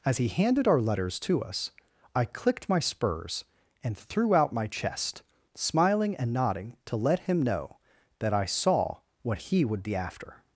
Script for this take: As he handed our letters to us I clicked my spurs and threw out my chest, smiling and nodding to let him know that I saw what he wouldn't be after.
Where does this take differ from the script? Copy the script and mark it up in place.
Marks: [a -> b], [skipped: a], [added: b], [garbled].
As he handed our letters to us I clicked my spurs and threw out my chest, smiling and nodding to let him know that I saw what he [wouldn't -> would] be after.